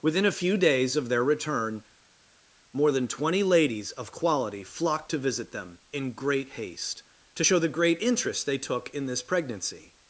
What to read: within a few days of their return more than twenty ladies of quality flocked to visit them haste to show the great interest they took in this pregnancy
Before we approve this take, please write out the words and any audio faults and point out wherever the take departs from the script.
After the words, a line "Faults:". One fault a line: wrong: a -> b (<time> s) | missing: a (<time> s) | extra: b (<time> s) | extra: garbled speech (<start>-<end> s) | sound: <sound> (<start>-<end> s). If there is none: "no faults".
within a few days of their return more than twenty ladies of quality flocked to visit them in great haste to show the great interest they took in this pregnancy
Faults:
extra: in great (5.9 s)